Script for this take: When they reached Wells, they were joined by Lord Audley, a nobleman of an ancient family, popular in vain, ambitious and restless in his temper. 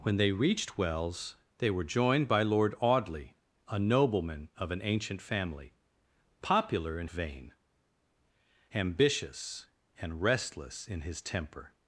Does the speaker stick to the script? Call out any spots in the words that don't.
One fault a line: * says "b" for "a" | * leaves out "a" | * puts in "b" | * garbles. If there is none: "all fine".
all fine